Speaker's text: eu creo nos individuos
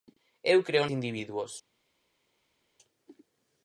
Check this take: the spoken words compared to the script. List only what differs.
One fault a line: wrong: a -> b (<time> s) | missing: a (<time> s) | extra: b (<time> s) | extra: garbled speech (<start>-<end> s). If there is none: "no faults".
missing: nos (0.9 s)